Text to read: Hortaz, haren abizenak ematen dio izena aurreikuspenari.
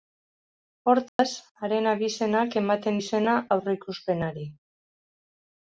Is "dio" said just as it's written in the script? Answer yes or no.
no